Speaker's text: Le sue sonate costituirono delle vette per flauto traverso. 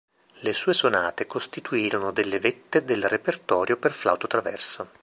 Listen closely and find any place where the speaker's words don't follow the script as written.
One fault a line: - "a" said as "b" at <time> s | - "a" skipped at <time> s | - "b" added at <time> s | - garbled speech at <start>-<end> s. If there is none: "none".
- "del repertorio" added at 2.9 s